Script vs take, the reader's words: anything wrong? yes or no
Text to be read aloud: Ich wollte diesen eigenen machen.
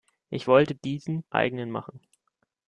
no